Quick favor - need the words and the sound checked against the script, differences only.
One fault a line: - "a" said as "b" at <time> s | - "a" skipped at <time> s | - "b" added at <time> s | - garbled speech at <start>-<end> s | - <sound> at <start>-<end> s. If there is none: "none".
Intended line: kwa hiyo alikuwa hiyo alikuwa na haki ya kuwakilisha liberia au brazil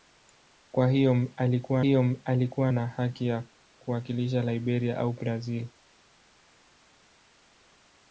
none